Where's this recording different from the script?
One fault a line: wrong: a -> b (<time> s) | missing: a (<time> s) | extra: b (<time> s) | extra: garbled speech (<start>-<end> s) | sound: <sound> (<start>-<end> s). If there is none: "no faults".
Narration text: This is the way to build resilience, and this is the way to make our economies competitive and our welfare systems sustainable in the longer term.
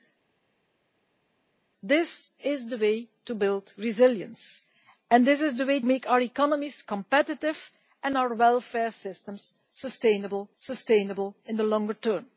missing: to (5.8 s)
extra: sustainable (10.6 s)